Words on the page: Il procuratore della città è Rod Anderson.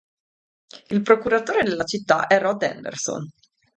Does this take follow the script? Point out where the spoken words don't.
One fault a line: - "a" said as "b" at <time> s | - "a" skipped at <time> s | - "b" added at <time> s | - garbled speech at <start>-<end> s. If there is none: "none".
none